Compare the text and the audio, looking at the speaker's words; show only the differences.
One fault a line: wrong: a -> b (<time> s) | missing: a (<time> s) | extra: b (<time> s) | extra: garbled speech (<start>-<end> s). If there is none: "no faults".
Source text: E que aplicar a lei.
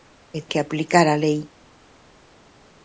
no faults